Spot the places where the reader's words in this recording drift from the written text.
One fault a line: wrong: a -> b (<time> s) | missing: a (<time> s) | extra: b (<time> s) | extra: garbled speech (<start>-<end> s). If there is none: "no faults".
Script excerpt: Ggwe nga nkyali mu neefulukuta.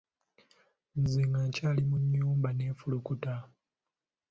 wrong: Ggwe -> Nze (1.0 s)
extra: nnyumba (2.0 s)